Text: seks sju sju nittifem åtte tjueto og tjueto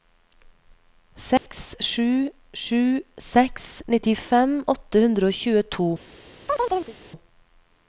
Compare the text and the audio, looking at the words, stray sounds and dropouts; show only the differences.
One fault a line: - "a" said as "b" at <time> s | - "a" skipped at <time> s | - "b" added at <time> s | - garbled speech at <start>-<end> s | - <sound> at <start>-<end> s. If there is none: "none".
- dropout at 1.4-1.5 s
- "seks" added at 3.3 s
- "tjueto" said as "hundre" at 5.1 s
- chirp at 6.5-7.0 s